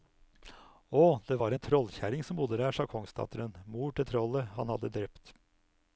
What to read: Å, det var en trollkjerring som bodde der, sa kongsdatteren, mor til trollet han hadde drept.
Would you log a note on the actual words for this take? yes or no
no